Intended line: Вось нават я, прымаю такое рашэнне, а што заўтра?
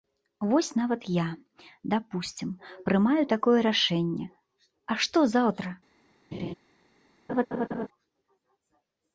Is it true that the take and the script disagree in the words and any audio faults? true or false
true